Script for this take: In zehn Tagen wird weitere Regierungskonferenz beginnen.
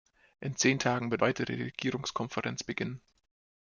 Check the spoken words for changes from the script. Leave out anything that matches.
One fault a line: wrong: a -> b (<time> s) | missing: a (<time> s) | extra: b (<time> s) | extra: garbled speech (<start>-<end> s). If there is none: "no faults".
no faults